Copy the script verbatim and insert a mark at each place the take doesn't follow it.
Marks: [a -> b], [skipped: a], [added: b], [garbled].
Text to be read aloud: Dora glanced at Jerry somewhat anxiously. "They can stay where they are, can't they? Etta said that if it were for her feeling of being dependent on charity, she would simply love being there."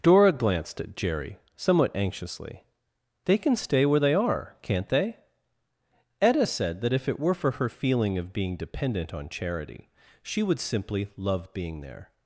Dora glanced at Jerry somewhat anxiously. "They can stay where they are, can't they? Etta said that if it were for her feeling of being dependent on charity, she would simply love being there."